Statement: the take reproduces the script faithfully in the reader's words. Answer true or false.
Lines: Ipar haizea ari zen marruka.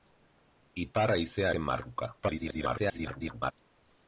false